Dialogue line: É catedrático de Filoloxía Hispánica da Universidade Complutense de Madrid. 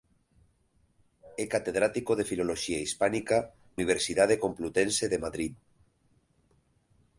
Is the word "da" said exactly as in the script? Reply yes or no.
no